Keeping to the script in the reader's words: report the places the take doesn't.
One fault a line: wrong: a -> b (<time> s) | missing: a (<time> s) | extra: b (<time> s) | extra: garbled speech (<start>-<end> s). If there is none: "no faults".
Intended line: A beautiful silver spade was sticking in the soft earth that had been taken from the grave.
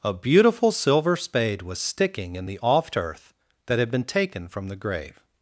wrong: soft -> oft (2.6 s)